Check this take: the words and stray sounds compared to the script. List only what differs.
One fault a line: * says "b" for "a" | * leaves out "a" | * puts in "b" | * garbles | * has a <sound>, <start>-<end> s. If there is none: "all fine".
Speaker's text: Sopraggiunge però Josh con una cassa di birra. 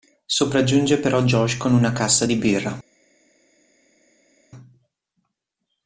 all fine